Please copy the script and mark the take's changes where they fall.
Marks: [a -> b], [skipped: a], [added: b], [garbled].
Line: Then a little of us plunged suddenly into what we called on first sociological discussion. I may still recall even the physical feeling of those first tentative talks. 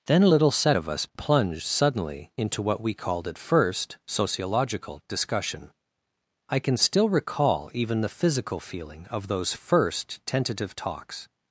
Then a little [added: set] of us plunged suddenly into what we called [on -> at] first sociological discussion. I [may -> can] still recall even the physical feeling of those first tentative talks.